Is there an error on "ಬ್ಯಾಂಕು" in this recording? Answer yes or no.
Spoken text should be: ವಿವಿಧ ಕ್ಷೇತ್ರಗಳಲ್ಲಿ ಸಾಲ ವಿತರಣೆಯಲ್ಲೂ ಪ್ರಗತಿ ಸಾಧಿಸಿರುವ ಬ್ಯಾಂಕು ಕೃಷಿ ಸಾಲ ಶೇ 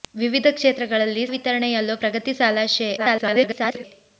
yes